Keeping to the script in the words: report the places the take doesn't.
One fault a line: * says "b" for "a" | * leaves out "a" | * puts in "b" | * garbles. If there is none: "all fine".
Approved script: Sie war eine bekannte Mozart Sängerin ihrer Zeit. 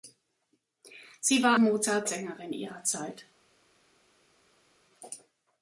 * leaves out "eine bekannte"